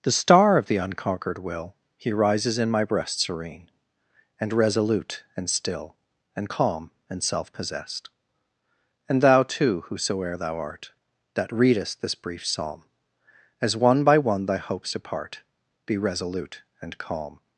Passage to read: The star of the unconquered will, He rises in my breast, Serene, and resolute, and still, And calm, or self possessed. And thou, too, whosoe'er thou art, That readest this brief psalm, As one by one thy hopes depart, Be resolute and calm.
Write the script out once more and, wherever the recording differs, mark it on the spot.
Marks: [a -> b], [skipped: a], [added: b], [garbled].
The star of the unconquered will, He rises in my breast, Serene, and resolute, and still, And calm, [or -> and] self possessed. And thou, too, whosoe'er thou art, That readest this brief psalm, As one by one thy hopes depart, Be resolute and calm.